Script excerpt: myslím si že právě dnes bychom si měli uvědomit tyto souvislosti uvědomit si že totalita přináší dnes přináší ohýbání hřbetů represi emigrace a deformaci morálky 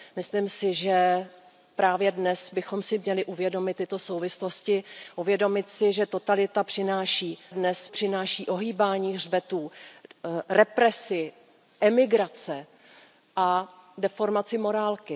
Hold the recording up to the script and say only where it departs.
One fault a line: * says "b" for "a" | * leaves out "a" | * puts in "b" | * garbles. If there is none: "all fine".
all fine